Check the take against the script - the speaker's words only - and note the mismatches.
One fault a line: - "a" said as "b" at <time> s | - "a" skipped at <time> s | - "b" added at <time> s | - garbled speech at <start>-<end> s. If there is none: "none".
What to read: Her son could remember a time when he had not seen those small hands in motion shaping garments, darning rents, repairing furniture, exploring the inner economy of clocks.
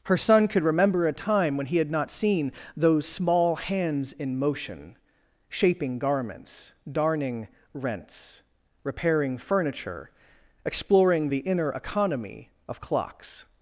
none